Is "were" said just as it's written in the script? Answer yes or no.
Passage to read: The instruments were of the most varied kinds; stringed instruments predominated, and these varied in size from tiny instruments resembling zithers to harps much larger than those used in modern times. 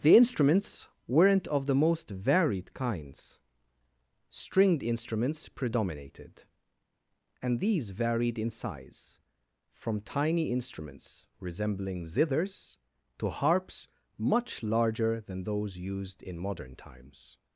no